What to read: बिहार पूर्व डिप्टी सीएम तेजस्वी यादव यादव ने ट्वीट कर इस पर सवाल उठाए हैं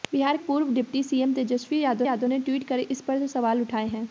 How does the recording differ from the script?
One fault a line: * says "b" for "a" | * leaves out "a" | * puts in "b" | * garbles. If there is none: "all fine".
all fine